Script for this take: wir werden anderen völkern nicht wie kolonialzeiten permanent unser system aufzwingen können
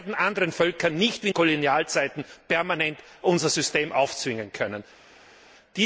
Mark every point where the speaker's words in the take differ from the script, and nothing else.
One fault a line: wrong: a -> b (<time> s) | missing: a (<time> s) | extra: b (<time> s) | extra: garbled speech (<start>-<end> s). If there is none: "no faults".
no faults